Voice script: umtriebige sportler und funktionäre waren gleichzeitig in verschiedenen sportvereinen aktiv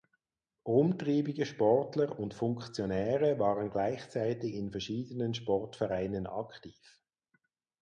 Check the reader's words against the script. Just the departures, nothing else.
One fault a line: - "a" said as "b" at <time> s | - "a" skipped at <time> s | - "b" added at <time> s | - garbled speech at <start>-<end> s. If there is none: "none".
none